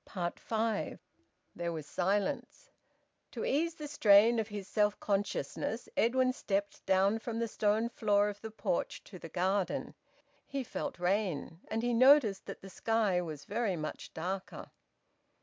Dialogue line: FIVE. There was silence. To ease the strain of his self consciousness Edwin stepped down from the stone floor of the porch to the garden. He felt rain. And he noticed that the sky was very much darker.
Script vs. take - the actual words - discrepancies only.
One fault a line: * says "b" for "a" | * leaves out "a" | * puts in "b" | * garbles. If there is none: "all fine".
all fine